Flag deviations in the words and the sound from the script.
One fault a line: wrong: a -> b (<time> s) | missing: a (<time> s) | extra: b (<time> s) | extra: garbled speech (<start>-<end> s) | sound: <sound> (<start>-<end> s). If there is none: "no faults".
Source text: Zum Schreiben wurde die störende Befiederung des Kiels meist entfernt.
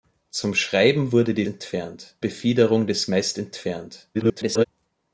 wrong: störende -> entfernt (1.5 s)
missing: Kiels (3.1 s)
extra: garbled speech (4.1-4.7 s)